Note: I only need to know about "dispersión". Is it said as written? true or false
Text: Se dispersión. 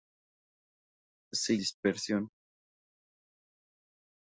true